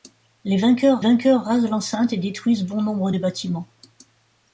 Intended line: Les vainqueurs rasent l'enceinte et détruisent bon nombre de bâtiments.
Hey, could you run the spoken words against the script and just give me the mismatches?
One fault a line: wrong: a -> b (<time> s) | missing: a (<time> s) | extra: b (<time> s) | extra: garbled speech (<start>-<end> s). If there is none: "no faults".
extra: vainqueurs (1.0 s)